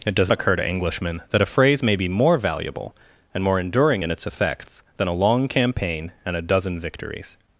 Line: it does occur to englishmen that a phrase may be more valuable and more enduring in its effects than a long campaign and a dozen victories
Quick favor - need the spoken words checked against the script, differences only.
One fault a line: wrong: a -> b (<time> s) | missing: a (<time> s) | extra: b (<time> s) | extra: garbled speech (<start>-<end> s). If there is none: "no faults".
no faults